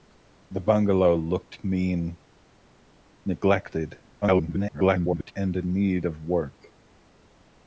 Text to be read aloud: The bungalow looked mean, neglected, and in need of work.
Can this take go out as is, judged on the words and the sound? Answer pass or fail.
fail